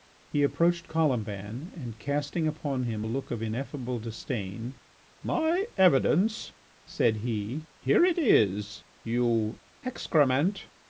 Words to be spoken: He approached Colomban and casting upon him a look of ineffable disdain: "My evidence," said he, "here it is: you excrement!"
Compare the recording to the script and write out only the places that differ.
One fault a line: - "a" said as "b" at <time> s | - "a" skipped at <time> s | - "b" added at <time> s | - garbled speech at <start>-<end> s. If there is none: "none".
none